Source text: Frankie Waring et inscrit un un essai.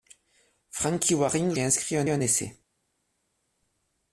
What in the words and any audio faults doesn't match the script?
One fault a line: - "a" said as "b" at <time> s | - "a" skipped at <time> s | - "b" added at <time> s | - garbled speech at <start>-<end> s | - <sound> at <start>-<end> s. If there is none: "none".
none